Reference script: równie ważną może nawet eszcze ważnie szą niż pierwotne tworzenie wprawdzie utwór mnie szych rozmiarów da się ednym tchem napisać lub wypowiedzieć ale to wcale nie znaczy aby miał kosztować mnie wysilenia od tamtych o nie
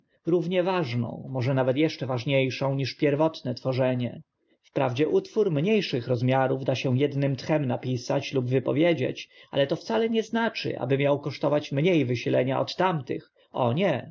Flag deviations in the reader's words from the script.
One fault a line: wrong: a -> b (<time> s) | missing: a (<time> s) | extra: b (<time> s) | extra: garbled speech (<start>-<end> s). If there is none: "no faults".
no faults